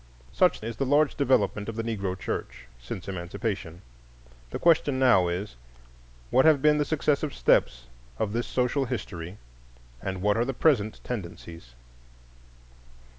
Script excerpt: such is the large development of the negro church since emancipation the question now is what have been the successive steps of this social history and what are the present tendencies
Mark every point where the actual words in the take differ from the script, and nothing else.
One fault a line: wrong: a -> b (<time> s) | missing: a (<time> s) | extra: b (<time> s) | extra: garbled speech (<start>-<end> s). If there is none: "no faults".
no faults